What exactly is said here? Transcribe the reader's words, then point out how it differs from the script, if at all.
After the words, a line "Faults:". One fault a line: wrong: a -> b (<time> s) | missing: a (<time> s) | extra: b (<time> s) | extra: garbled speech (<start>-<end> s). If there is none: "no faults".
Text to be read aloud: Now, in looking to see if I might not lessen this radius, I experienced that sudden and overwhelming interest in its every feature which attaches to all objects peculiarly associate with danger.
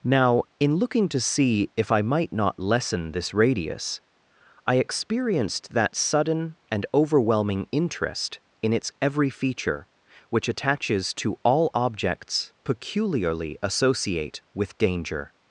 Now, in looking to see if I might not lessen this radius, I experienced that sudden and overwhelming interest in its every feature which attaches to all objects peculiarly associate with danger.
Faults:
no faults